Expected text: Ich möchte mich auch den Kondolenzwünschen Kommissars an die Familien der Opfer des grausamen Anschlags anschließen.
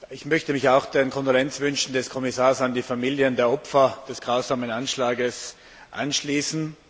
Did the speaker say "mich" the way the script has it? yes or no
yes